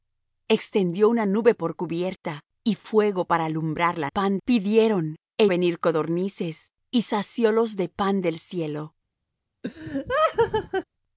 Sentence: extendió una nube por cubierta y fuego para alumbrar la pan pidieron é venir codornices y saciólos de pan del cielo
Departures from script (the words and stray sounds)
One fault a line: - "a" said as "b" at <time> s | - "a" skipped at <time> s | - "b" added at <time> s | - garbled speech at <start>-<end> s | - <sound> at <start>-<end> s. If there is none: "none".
- laugh at 9.6-10.8 s